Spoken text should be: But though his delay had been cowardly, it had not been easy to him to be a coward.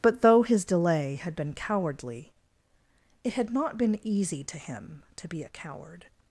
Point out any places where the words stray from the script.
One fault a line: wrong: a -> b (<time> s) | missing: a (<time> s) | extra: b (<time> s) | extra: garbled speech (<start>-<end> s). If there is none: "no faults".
no faults